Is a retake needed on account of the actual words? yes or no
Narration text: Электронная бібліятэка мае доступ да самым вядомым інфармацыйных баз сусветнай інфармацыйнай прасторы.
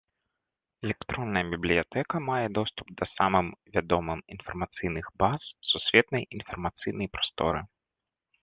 no